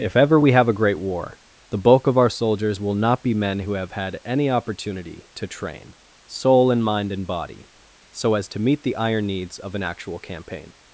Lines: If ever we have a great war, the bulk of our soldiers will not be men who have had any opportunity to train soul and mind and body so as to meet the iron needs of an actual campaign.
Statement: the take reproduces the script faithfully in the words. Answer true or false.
true